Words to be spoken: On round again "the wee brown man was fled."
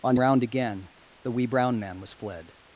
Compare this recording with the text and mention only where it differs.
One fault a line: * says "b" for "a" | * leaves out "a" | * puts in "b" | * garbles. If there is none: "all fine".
all fine